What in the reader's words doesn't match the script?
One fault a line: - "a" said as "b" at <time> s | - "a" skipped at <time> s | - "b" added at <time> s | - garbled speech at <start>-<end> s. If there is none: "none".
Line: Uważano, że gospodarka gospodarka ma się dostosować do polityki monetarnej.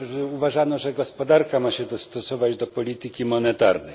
- "gospodarka" skipped at 1.6 s